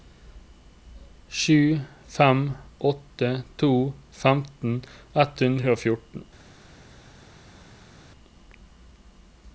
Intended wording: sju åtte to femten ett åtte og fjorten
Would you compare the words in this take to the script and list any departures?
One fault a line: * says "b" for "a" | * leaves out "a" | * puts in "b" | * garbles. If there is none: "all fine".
* puts in "fem"
* says "hundre" for "åtte"